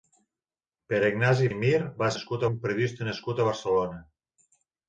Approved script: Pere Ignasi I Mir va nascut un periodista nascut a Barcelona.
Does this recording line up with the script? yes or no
yes